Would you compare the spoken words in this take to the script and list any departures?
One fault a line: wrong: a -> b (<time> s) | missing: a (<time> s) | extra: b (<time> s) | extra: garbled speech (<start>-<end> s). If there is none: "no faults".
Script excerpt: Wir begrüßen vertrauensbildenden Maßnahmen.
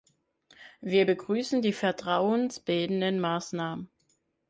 extra: die (1.6 s)